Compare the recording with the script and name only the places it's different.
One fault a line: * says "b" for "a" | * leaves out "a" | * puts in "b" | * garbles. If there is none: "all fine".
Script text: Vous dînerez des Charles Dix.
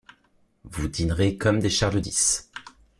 * puts in "comme"